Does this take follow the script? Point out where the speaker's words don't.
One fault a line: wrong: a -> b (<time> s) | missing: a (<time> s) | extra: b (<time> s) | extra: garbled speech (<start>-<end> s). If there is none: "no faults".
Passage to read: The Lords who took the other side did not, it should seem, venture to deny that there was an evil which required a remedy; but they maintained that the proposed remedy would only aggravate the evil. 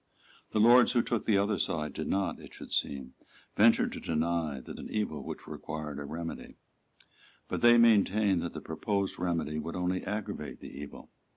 missing: there was (4.8 s)